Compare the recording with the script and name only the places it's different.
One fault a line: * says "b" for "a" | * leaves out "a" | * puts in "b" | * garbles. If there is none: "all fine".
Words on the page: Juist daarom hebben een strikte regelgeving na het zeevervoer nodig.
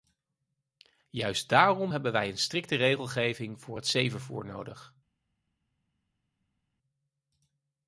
* puts in "wij"
* says "voor" for "na"